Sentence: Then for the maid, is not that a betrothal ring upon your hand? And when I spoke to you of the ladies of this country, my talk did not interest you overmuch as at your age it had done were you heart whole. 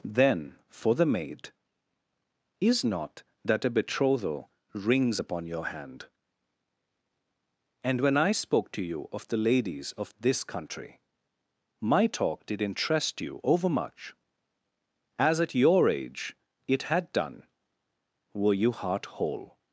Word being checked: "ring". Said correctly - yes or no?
no